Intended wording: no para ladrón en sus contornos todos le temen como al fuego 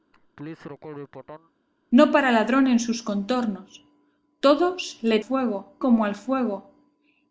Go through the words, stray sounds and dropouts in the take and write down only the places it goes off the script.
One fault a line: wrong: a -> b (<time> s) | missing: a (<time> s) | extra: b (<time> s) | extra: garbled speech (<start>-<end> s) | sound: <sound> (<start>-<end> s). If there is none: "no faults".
sound: laugh (0.1-1.5 s)
wrong: temen -> fuego (5.2 s)